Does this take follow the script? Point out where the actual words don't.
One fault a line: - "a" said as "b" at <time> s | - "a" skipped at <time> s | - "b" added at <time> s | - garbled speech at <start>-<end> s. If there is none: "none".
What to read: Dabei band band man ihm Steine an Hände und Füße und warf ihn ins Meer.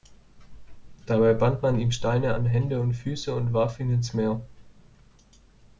- "band" skipped at 1.6 s